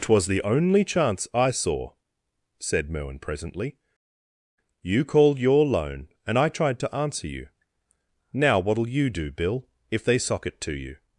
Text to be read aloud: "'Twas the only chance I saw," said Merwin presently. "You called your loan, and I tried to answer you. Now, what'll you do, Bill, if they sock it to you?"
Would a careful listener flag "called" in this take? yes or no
no